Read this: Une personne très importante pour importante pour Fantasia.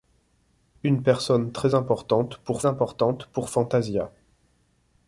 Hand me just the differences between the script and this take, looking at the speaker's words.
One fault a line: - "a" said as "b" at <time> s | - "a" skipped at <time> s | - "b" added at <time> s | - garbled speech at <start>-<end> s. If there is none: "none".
none